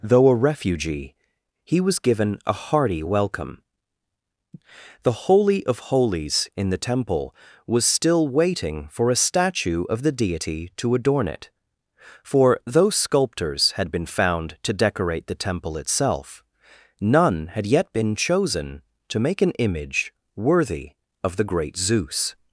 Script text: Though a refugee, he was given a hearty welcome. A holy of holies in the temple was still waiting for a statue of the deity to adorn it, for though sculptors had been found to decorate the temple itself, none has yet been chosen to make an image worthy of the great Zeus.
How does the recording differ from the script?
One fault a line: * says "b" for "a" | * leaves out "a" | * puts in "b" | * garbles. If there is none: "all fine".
* says "The" for "A"
* says "had" for "has"